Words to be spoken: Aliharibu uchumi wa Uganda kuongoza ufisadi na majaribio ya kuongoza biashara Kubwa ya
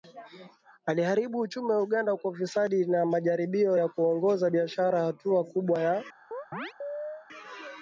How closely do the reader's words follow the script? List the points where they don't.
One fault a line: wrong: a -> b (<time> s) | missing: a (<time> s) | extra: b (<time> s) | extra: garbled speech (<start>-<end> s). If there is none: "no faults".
wrong: kuongoza -> kwa (2.1 s)
extra: Hatua (5.0 s)